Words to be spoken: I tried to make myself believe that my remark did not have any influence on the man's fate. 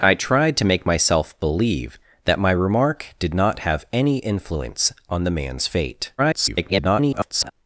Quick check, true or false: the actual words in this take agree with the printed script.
false